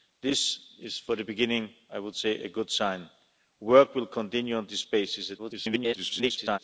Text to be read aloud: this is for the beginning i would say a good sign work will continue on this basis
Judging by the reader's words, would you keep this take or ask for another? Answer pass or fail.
fail